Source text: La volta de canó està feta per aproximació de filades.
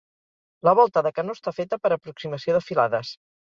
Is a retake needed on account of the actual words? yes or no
no